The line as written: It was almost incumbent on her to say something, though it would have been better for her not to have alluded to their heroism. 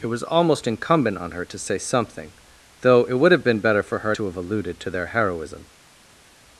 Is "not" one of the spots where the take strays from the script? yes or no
yes